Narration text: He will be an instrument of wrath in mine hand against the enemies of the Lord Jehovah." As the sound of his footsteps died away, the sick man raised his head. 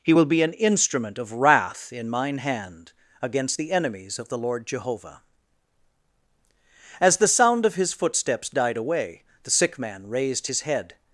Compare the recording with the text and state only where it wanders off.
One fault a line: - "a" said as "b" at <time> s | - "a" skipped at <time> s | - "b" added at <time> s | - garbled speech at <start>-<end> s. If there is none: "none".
none